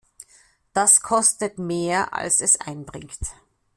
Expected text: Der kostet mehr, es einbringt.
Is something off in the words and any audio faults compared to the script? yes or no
yes